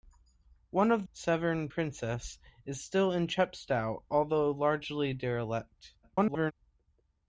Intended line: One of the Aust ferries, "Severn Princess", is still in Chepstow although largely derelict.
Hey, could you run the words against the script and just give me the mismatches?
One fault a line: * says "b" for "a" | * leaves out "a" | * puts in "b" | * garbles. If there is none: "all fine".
* leaves out "the Aust ferries"
* garbles